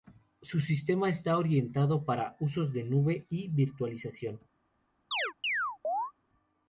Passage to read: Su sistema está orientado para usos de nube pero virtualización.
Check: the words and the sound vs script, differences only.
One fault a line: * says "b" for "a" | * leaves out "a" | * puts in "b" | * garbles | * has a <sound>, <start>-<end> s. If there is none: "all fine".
* says "y" for "pero"
* has a chirp, 5.1-6.1 s